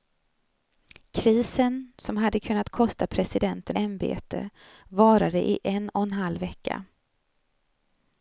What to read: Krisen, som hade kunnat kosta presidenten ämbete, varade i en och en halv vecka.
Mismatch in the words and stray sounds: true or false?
false